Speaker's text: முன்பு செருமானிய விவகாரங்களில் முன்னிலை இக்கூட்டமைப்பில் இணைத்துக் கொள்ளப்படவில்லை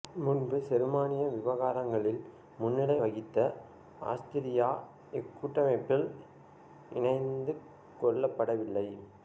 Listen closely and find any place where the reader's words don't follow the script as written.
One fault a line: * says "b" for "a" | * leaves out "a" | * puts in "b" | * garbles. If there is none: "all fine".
* puts in "வகித்த ஆஸ்திரியா"